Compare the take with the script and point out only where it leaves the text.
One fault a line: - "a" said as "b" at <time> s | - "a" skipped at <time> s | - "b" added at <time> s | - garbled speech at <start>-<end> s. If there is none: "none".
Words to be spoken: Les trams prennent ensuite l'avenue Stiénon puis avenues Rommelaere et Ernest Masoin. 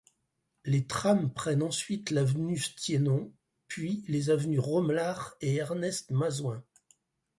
- "les" added at 4.1 s